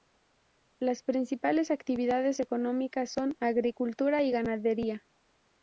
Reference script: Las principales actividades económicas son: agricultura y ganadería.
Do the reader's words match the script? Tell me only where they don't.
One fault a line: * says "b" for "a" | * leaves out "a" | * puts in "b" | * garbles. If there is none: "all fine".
all fine